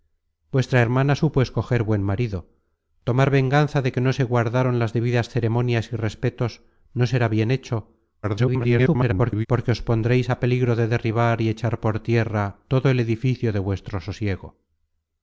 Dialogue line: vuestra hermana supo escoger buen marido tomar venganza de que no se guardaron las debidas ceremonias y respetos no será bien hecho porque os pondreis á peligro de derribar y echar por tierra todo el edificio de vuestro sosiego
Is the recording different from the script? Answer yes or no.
yes